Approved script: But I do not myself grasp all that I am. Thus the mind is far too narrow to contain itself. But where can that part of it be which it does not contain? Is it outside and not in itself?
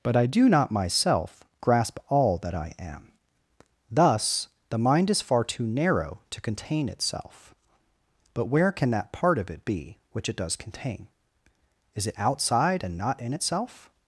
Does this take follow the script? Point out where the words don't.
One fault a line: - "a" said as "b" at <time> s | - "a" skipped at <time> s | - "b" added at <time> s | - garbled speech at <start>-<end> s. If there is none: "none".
- "not" skipped at 10.6 s